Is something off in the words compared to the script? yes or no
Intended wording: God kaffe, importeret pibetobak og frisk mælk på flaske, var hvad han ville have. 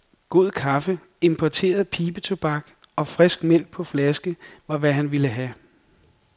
no